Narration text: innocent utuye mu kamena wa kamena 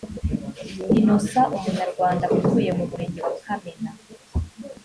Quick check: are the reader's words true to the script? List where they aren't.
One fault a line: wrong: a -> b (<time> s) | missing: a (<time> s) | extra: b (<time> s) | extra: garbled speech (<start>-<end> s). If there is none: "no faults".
extra: umunyarwanda (1.6 s)
wrong: kamena -> murenge (2.9 s)